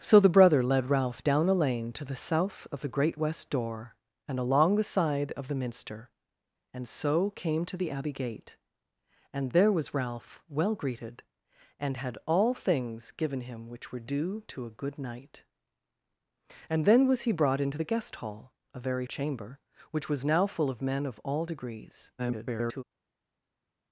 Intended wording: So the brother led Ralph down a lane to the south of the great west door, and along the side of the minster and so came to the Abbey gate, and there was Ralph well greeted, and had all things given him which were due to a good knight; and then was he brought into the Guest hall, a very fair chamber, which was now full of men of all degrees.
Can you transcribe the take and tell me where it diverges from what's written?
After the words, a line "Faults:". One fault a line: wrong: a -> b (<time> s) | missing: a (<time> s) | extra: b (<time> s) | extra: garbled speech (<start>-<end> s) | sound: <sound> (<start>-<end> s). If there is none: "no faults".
So the brother led Ralph down a lane to the south of the great west door, and along the side of the minster and so came to the Abbey gate, and there was Ralph well greeted, and had all things given him which were due to a good knight; and then was he brought into the Guest hall, a very chamber, which was now full of men of all degrees. [garbled]
Faults:
missing: fair (19.1 s)
extra: garbled speech (22.2-22.8 s)